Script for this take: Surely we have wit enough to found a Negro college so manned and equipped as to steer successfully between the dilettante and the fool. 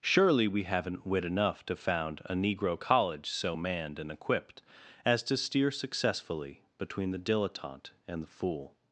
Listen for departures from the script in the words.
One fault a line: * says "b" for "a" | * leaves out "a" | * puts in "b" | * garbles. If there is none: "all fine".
* says "haven't" for "have"